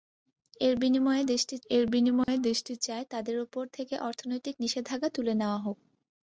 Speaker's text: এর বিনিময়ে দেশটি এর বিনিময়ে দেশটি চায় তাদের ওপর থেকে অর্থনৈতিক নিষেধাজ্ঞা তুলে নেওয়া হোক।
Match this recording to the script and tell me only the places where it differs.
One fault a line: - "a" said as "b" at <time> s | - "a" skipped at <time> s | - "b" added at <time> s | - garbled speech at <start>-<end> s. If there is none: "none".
none